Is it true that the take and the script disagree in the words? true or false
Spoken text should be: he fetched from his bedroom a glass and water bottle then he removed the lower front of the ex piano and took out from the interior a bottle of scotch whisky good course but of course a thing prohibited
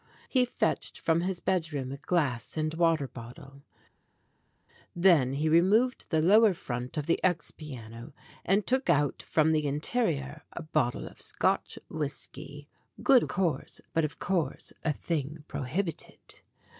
false